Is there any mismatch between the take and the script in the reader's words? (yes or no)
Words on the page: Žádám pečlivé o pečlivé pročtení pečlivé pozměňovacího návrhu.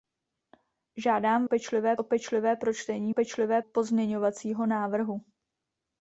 no